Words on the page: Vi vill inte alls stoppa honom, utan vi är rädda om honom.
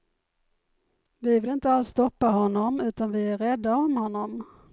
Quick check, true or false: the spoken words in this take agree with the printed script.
true